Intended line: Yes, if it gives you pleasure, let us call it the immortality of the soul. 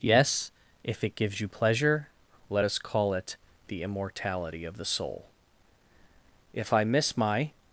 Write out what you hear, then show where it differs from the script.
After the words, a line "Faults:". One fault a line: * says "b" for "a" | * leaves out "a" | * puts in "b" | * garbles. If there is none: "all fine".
Yes, if it gives you pleasure, let us call it the immortality of the soul. If I miss my
Faults:
* puts in "If I miss my"